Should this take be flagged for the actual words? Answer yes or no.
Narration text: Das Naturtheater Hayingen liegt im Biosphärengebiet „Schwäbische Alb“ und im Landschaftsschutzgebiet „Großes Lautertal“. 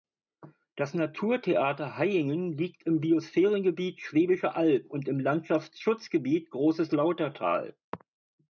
no